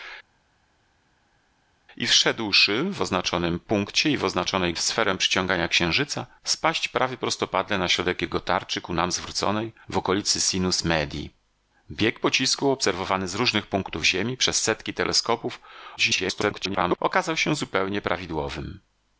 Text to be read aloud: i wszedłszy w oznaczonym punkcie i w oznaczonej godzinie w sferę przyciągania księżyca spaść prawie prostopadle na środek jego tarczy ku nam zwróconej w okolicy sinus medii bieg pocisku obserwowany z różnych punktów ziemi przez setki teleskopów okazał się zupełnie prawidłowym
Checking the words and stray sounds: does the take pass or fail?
fail